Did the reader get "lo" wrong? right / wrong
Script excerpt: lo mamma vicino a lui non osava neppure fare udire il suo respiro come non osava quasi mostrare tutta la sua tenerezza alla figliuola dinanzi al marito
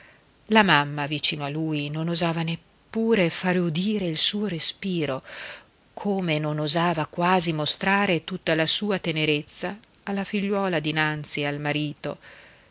wrong